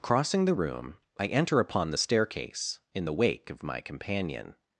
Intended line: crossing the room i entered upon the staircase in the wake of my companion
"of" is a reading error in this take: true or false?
false